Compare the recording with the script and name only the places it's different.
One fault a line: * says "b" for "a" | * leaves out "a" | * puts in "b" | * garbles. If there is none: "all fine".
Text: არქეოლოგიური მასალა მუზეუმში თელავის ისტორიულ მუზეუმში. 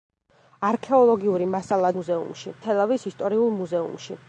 all fine